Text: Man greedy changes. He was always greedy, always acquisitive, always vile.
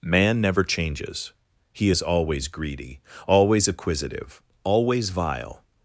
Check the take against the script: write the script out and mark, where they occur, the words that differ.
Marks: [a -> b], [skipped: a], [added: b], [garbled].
Man [greedy -> never] changes. He [was -> is] always greedy, always acquisitive, always vile.